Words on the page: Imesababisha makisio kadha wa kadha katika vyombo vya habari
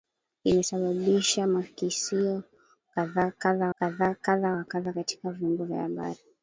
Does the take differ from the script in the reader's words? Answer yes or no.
yes